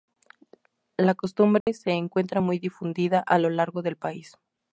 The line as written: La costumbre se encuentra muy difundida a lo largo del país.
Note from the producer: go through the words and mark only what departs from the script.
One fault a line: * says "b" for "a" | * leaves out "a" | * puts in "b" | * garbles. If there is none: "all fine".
all fine